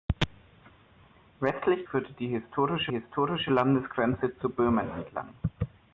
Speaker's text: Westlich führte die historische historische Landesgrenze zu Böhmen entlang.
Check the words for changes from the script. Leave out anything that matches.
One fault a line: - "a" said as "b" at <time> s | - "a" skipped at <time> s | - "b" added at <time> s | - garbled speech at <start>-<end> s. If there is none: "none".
none